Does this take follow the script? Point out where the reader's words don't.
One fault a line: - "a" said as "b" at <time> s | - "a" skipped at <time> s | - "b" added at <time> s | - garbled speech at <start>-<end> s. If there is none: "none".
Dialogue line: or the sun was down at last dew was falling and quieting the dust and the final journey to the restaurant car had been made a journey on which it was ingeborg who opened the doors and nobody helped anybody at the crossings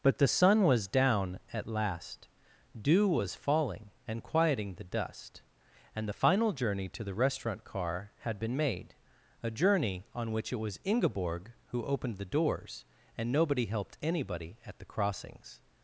- "or" said as "but" at 0.0 s